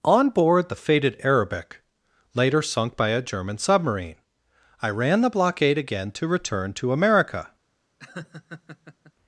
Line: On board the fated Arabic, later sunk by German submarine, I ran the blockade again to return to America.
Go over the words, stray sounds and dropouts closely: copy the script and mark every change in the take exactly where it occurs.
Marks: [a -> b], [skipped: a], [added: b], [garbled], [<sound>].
On board the fated Arabic, later sunk by [added: a] German submarine, I ran the blockade again to return to America. [laugh]